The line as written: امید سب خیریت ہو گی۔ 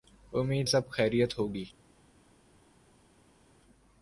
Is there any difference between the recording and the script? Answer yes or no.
no